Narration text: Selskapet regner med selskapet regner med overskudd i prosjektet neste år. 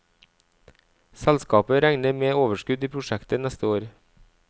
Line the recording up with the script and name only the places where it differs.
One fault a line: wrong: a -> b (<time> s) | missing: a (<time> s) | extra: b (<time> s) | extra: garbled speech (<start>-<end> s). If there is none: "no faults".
missing: selskapet regner med (2.4 s)